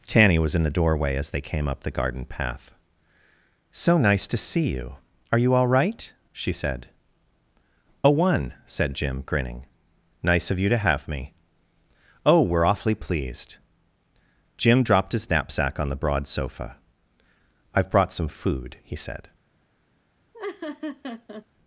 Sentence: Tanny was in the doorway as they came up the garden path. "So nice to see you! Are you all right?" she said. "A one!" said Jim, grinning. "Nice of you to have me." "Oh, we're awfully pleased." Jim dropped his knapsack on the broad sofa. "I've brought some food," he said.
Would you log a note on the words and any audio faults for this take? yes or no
yes